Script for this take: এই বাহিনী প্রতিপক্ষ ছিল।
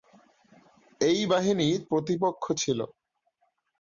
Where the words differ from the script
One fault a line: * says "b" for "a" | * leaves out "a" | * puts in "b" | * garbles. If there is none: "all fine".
all fine